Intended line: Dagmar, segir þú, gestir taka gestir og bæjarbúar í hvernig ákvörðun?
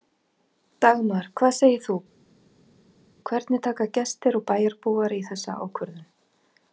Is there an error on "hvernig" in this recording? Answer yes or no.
yes